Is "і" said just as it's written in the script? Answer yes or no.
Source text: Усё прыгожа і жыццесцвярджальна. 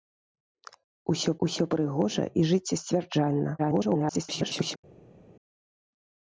yes